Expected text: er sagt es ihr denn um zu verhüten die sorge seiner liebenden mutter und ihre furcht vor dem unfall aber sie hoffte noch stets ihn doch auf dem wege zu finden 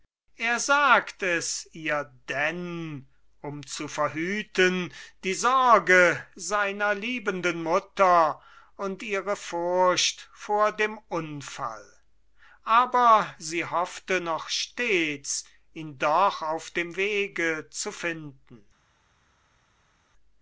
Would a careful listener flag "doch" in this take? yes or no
no